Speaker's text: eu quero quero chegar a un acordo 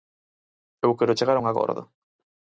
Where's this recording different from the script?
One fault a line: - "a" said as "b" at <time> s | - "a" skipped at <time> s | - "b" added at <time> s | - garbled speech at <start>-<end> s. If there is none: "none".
- "quero" skipped at 1.2 s